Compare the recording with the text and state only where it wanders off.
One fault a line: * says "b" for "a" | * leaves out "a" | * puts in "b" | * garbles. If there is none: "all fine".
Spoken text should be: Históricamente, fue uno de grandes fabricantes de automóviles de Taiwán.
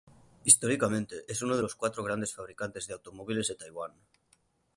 * says "es" for "fue"
* puts in "los cuatro"